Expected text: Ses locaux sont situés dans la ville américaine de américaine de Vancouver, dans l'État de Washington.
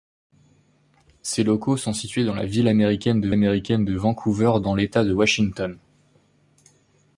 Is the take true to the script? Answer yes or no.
yes